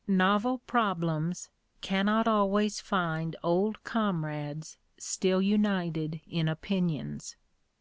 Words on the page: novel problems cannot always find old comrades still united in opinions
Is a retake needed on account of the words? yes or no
no